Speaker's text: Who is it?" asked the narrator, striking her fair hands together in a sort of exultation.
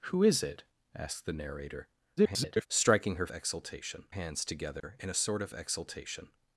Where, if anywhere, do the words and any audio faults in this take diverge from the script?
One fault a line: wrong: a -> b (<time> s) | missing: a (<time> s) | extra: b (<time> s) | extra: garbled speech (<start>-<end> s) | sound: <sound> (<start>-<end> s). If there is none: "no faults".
extra: garbled speech (2.2-2.7 s)
wrong: fair -> exultation (3.3 s)
sound: dropout (4.8-4.8 s)